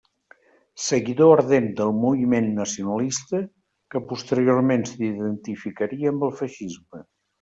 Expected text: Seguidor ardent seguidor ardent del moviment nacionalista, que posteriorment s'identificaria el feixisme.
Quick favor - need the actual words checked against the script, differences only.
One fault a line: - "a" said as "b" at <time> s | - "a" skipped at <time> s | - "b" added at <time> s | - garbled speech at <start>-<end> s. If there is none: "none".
- "seguidor ardent" skipped at 1.7 s
- "amb" added at 6.2 s